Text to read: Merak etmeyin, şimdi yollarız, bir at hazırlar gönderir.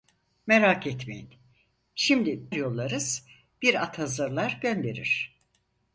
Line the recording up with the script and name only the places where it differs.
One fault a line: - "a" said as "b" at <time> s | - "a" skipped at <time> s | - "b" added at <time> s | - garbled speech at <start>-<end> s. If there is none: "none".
none